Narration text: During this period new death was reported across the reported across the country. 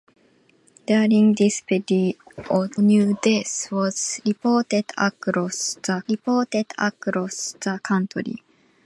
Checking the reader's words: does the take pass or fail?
pass